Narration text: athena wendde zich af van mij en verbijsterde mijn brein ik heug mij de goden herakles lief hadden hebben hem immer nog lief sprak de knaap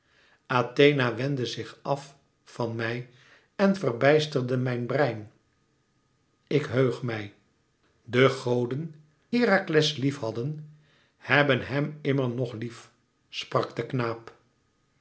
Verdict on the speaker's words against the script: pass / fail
pass